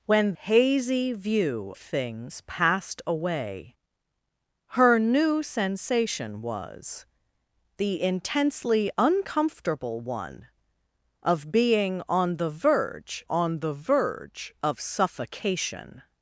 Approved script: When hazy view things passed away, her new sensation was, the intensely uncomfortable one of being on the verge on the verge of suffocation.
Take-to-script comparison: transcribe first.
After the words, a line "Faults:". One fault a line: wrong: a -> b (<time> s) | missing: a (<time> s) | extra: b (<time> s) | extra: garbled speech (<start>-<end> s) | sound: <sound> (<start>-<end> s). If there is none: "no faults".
When hazy view things passed away, her new sensation was, the intensely uncomfortable one of being on the verge on the verge of suffocation.
Faults:
no faults